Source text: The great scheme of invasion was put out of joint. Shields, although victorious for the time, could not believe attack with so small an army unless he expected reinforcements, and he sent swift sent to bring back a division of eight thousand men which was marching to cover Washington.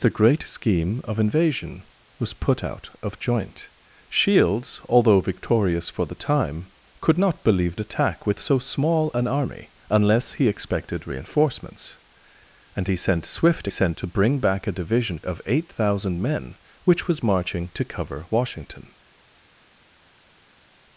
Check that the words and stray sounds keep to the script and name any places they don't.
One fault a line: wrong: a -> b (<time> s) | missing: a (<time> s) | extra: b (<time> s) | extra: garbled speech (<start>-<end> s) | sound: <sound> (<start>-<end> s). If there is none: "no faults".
no faults